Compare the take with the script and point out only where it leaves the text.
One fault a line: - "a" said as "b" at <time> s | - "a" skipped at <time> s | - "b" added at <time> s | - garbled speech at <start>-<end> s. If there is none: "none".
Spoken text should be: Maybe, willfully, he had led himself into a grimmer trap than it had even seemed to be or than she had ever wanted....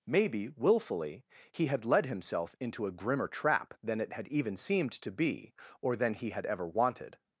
- "she" said as "he" at 6.2 s